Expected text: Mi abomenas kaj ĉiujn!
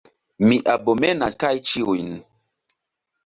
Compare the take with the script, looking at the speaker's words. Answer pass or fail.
pass